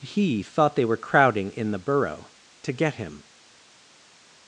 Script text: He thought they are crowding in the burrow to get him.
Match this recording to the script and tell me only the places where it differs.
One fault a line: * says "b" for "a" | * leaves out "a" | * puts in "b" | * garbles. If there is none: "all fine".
* says "were" for "are"